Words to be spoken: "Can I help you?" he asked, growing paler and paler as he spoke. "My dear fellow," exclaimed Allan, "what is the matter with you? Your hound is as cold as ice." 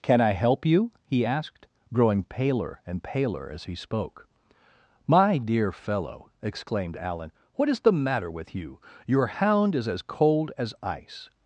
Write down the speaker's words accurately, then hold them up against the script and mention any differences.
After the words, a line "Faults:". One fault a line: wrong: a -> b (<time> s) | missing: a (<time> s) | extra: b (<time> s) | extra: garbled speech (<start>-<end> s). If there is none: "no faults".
"Can I help you?" he asked, growing paler and paler as he spoke. "My dear fellow," exclaimed Allan, "what is the matter with you? Your hound is as cold as ice."
Faults:
no faults